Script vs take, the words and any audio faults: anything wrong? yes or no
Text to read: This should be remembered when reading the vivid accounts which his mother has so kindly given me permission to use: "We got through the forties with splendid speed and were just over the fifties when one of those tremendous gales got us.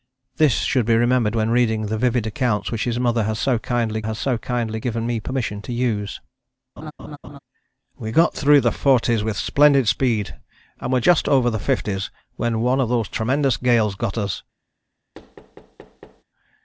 yes